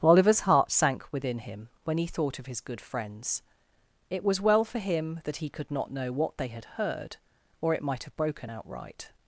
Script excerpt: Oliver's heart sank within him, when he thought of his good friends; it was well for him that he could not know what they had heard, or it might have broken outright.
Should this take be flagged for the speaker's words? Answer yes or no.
no